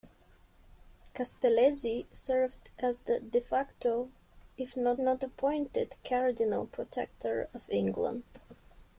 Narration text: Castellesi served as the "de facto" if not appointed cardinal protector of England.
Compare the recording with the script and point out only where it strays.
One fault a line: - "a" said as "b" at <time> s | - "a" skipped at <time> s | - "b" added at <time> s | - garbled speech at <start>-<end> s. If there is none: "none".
- "not" added at 5.0 s